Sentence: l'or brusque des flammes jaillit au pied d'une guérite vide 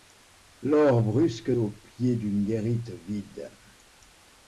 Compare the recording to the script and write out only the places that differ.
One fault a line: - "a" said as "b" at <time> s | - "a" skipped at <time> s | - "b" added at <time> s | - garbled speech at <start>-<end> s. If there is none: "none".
- "des flammes jaillit" skipped at 1.5 s